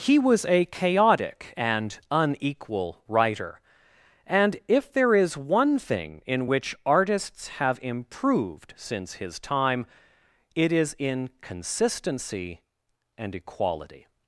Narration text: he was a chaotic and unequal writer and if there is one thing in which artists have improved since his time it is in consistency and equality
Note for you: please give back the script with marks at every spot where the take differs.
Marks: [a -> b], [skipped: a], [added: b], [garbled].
he was a chaotic and unequal writer and if there is one thing in which artists have improved since his time it is in consistency and equality